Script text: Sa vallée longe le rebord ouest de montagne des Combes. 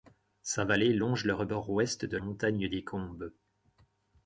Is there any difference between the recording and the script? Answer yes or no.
no